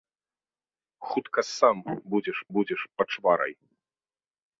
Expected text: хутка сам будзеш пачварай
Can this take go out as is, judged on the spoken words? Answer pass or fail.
fail